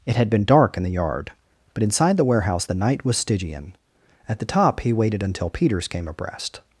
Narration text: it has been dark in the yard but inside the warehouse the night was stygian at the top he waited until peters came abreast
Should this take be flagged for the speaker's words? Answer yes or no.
yes